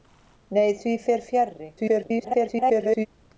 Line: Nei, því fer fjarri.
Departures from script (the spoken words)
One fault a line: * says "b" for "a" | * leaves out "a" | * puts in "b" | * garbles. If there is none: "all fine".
* garbles